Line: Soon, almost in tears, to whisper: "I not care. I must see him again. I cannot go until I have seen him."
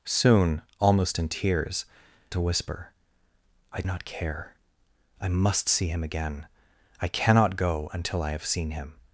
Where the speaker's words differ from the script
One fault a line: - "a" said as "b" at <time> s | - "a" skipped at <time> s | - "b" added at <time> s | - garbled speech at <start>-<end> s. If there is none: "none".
none